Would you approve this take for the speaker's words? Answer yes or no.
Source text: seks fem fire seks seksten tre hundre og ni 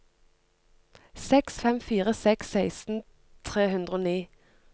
yes